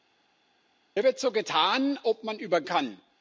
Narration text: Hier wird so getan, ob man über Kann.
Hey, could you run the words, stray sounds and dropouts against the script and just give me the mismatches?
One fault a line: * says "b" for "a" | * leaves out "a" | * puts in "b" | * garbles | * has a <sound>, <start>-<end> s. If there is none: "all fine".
all fine